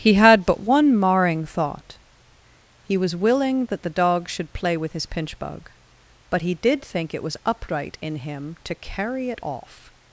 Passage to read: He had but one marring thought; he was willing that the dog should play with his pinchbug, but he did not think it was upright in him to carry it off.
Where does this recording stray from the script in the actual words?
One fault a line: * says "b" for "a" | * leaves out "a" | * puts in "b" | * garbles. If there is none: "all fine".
* leaves out "not"